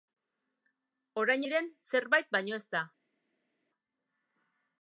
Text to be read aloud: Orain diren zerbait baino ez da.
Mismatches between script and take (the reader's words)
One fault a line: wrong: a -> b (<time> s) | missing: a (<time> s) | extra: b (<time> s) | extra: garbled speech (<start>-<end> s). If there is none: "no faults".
no faults